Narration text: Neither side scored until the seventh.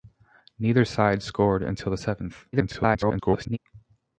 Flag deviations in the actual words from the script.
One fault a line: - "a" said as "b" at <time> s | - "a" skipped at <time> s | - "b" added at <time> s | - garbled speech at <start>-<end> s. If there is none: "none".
- garbled speech at 2.5-3.6 s